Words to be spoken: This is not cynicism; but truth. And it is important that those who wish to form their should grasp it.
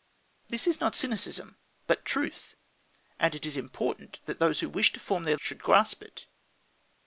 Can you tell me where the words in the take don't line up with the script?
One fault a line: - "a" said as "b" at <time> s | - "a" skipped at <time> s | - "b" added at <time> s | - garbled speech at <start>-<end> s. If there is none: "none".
none